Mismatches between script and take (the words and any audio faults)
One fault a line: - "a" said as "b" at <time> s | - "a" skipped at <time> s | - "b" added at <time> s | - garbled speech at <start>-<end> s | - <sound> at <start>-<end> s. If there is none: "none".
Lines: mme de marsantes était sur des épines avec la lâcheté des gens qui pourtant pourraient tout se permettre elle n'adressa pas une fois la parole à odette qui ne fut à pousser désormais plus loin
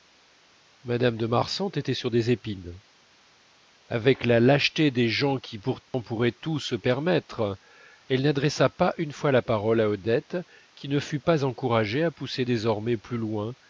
- dropout at 5.8-5.9 s
- "pas encouragée" added at 11.2 s